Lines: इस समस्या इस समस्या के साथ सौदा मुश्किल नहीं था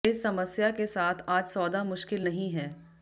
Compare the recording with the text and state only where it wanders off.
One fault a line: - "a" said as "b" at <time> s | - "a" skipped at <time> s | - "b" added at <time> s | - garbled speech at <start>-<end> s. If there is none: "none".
- "इस समस्या" skipped at 0.7 s
- "आज" added at 1.3 s
- "था" said as "है" at 2.5 s